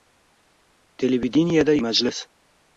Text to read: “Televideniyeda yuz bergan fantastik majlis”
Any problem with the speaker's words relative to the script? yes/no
yes